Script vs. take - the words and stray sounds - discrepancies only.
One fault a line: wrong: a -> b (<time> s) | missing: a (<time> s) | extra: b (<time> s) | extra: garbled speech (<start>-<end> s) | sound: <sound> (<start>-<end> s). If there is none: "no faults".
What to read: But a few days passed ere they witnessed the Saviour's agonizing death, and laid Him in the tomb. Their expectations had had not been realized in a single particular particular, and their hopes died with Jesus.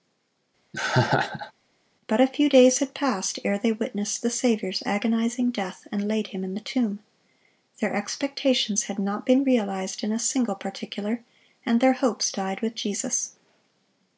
sound: laugh (0.7-1.5 s)
extra: had (2.8 s)
missing: had (9.0 s)
missing: particular (11.2 s)